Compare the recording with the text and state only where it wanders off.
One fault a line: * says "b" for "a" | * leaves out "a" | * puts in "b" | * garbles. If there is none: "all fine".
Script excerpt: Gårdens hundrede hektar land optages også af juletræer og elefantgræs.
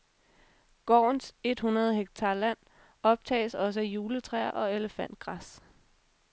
* puts in "et"